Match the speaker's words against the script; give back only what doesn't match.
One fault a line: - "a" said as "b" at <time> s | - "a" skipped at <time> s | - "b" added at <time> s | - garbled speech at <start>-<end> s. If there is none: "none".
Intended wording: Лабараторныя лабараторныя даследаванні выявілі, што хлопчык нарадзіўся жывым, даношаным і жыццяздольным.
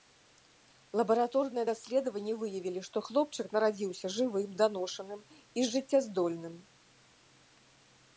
- "лабараторныя" skipped at 1.6 s